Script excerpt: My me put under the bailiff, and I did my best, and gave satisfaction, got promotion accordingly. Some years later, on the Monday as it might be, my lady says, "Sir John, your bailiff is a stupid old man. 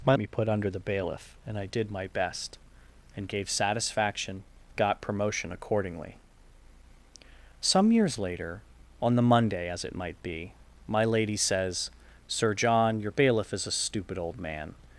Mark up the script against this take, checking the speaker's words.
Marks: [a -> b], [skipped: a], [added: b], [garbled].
My me put under the bailiff, and I did my best, and gave satisfaction, got promotion accordingly. Some years later, on the Monday as it might be, my lady says, "Sir John, your bailiff is a stupid old man.